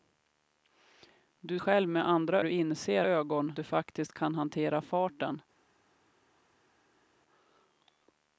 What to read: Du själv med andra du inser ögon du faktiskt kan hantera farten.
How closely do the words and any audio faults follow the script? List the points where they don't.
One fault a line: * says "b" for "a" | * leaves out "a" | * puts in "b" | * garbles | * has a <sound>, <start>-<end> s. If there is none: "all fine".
all fine